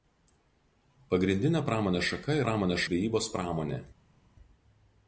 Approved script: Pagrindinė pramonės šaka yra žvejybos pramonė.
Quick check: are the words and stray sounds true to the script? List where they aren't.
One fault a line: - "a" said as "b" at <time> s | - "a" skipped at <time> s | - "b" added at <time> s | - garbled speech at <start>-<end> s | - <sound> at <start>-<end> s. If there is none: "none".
- "yra" said as "pramonės" at 2.4 s